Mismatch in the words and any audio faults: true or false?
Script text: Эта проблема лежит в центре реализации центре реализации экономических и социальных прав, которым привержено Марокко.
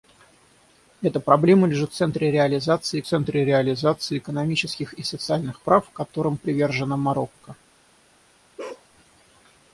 true